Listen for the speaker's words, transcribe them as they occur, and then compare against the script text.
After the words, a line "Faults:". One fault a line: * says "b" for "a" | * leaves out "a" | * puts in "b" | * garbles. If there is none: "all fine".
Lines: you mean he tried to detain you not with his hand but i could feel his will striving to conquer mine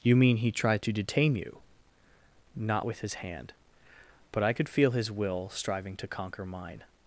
you mean he tried to detain you not with his hand but i could feel his will striving to conquer mine
Faults:
all fine